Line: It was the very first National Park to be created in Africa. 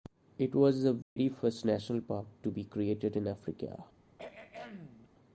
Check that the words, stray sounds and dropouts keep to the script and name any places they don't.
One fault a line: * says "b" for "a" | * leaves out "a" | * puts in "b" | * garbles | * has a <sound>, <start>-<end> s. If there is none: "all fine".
* has a dropout, 1.0-1.2 s
* has a throat clearing, 4.1-5.1 s